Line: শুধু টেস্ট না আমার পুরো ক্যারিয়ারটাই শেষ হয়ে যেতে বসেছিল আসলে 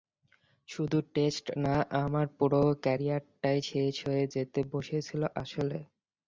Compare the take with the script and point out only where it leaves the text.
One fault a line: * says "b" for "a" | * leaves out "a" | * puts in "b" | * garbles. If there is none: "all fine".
all fine